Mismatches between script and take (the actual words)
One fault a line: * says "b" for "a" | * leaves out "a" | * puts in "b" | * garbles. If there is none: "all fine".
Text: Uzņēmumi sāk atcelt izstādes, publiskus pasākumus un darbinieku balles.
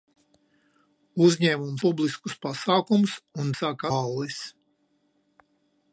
* leaves out "sāk atcelt izstādes"
* says "sāk" for "darbinieku"